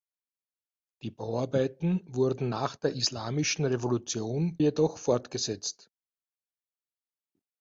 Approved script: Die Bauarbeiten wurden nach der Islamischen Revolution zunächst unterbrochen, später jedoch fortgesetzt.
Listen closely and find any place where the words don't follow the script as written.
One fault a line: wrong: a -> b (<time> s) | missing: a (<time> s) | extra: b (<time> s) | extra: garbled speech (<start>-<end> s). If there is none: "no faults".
missing: zunächst unterbrochen später (4.6 s)